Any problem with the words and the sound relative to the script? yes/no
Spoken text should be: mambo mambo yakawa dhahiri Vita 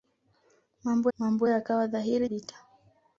no